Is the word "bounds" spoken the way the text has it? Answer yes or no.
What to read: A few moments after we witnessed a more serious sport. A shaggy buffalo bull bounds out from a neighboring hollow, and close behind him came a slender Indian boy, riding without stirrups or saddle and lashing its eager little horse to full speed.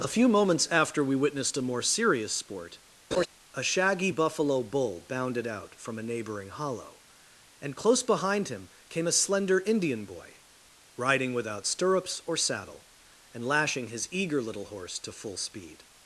no